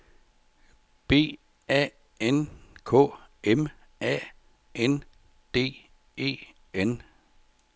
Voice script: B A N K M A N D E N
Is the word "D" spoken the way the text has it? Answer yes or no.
yes